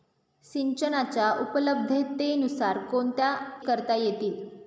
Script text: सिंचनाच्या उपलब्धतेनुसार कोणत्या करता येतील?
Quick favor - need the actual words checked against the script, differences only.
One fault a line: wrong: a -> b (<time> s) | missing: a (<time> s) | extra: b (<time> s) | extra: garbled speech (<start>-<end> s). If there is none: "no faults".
no faults